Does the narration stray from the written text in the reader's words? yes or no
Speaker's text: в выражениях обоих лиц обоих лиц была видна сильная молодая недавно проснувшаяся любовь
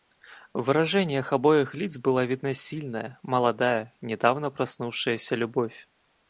yes